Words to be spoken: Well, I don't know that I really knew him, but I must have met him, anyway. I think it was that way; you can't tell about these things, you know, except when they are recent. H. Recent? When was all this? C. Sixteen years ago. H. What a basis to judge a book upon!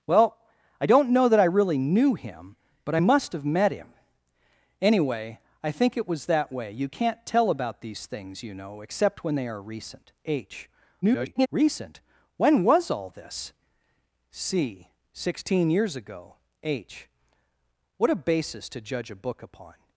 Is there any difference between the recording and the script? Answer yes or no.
yes